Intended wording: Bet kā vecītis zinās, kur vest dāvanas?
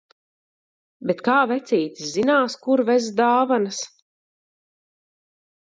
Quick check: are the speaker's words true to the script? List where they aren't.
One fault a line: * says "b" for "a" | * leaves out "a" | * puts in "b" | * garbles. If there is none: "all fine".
all fine